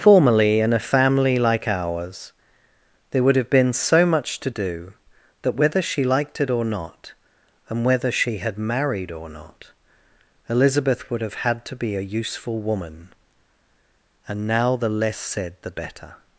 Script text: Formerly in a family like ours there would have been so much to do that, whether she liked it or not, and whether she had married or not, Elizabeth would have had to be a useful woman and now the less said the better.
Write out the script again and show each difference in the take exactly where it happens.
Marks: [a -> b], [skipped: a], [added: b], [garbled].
Formerly in a family like ours there would have been so much to do that, whether she liked it or not, and whether she had married or not, Elizabeth would have had to be a useful woman and now the less said the better.